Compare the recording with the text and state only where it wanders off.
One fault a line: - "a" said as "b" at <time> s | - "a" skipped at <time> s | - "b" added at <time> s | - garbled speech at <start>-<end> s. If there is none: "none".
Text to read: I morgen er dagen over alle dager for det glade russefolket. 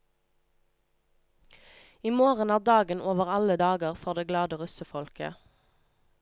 none